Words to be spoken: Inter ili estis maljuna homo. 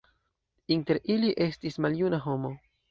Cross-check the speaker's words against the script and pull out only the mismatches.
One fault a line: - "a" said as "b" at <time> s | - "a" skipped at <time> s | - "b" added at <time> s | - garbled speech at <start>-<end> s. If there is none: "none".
none